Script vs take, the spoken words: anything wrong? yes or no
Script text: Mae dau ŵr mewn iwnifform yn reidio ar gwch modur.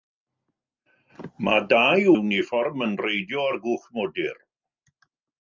yes